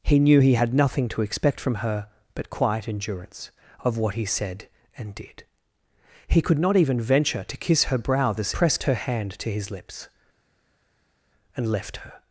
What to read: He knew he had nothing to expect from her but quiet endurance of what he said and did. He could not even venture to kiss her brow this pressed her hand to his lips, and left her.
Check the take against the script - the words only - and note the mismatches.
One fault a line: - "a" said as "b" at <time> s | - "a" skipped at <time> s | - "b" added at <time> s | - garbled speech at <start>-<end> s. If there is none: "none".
none